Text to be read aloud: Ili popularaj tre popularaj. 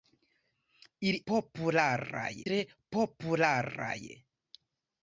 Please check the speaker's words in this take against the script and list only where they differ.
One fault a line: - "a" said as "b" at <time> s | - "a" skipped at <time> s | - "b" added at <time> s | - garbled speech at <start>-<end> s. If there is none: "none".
none